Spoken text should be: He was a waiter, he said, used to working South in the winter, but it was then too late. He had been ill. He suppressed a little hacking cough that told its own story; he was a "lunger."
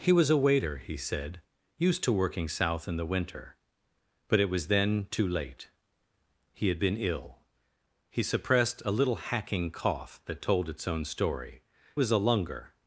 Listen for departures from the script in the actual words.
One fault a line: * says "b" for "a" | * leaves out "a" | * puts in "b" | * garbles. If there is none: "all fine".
* leaves out "he"